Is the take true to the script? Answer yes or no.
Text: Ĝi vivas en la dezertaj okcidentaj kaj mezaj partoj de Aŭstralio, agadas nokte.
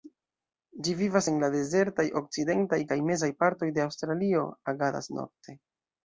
yes